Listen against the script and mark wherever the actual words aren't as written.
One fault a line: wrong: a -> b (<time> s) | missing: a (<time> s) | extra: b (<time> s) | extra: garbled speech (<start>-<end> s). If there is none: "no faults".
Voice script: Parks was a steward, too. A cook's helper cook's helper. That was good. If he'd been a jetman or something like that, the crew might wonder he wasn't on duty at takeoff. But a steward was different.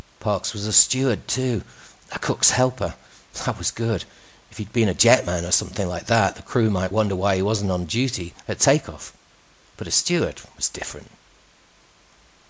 missing: cook's helper (3.0 s)
extra: why (7.2 s)